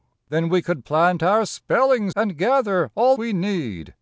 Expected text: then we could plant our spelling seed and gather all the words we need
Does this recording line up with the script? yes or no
no